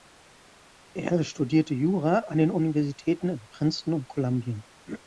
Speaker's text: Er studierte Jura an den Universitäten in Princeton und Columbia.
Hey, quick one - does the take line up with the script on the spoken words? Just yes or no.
yes